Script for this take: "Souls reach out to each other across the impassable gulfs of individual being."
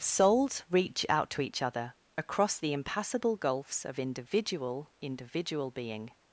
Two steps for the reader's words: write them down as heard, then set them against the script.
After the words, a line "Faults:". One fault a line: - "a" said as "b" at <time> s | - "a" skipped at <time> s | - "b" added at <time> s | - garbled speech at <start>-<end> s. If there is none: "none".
"Souls reach out to each other across the impassable gulfs of individual individual being."
Faults:
- "individual" added at 5.0 s